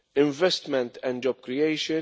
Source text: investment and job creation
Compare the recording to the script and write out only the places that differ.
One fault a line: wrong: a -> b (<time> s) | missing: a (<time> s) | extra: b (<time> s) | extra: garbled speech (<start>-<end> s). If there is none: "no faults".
no faults